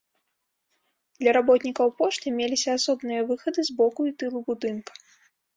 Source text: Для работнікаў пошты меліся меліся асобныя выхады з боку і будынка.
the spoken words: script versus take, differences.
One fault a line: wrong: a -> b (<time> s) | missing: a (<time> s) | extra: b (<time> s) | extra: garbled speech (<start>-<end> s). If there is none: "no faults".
missing: меліся (2.7 s)
extra: тылу (4.2 s)